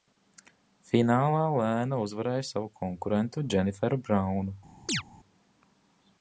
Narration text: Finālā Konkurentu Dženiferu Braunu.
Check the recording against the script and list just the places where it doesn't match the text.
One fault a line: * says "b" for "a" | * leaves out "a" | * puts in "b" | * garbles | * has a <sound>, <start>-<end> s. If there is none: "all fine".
* puts in "Lēna uzvarēja savu"
* has a chirp, 4.9-5.0 s